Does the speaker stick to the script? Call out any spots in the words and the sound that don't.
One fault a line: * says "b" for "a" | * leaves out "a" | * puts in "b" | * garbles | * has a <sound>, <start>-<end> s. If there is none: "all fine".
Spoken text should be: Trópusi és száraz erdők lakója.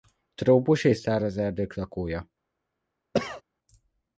* has a cough, 3.1-3.4 s